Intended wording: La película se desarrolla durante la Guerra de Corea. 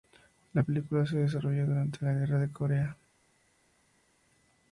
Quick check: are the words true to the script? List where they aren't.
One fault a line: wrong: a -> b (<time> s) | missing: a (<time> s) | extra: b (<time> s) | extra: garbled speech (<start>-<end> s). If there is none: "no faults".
no faults